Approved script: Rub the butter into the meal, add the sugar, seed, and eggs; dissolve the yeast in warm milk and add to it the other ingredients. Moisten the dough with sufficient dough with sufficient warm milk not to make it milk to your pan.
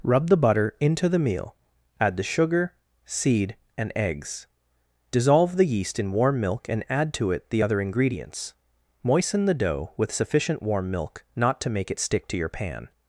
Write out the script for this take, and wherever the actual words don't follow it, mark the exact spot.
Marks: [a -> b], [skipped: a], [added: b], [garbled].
Rub the butter into the meal, add the sugar, seed, and eggs; dissolve the yeast in warm milk and add to it the other ingredients. Moisten the dough with sufficient [skipped: dough with sufficient] warm milk not to make it [milk -> stick] to your pan.